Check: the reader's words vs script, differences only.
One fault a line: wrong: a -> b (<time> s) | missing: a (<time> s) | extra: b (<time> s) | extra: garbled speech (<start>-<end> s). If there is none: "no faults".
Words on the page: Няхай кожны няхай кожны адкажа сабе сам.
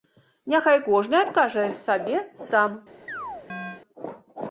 missing: няхай кожны (1.2 s)